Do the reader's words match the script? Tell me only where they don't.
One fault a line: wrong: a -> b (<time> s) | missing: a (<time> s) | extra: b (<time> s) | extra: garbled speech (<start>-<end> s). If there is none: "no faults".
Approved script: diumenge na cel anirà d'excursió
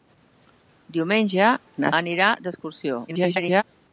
missing: cel (1.9 s)
extra: garbled speech (3.1-3.6 s)